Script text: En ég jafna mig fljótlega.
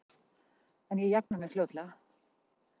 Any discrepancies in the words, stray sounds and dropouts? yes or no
yes